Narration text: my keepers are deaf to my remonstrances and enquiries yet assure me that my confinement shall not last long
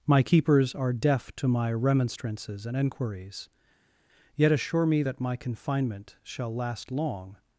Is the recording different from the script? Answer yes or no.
yes